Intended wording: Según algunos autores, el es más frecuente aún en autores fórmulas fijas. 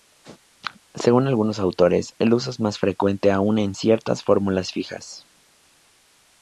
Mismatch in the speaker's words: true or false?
true